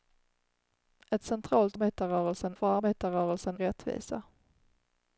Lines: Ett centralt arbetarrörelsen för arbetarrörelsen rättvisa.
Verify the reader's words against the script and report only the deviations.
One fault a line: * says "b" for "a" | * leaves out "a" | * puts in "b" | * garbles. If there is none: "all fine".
all fine